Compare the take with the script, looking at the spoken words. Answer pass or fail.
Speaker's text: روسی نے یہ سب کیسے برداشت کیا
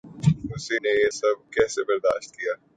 pass